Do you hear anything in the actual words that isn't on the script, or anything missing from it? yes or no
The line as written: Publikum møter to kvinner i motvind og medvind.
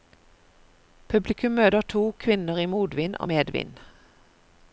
no